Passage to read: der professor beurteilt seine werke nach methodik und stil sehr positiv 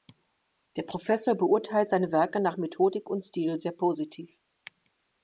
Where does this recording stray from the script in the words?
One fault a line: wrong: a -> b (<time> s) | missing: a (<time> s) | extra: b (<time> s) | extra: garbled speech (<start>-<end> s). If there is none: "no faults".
no faults